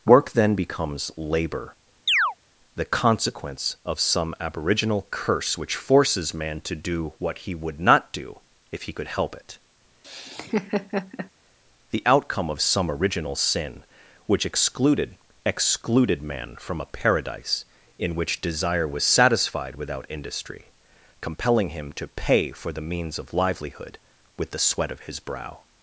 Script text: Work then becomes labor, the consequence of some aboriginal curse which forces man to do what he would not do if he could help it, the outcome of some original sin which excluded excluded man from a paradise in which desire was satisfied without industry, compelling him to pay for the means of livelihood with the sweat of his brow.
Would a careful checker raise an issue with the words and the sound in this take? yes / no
yes